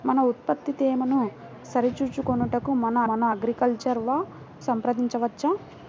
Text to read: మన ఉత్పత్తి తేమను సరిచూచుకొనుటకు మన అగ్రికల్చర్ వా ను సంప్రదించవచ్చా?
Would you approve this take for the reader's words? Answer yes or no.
no